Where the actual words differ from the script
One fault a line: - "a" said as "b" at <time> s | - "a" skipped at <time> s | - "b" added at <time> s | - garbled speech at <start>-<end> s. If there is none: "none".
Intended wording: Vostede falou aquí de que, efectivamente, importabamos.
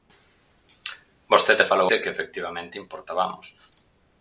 - "aquí" skipped at 1.9 s